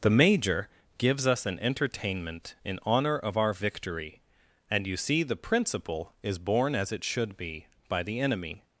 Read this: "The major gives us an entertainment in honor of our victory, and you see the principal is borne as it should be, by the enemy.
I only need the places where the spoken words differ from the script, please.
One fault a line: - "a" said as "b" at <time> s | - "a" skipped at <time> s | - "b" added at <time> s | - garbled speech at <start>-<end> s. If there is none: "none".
none